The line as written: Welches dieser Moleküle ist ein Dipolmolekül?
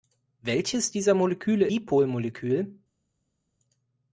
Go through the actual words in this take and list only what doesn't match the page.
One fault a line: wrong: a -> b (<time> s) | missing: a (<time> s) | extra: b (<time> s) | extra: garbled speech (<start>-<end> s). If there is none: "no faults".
missing: ist ein (1.7 s)